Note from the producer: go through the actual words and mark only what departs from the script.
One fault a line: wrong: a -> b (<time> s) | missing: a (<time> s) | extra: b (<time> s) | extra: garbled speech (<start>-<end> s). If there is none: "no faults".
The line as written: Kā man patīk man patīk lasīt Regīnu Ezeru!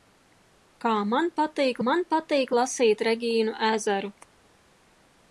no faults